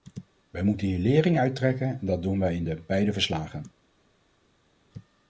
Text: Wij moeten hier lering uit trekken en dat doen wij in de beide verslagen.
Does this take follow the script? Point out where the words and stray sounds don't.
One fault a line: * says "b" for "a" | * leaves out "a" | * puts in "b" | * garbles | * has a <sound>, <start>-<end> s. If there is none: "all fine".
all fine